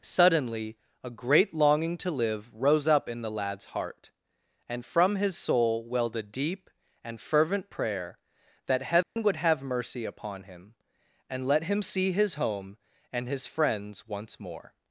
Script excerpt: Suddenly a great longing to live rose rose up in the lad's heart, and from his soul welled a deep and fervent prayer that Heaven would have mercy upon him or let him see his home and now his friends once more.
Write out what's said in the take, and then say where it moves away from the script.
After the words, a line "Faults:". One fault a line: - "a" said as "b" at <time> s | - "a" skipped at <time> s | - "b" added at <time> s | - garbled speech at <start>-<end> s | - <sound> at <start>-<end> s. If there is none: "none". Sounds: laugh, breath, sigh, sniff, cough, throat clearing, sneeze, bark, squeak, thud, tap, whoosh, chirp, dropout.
Suddenly a great longing to live rose up in the lad's heart, and from his soul welled a deep and fervent prayer that Heaven would have mercy upon him and let him see his home and his friends once more.
Faults:
- "rose" skipped at 2.9 s
- dropout at 9.0-9.2 s
- "or" said as "and" at 11.3 s
- "now" skipped at 13.3 s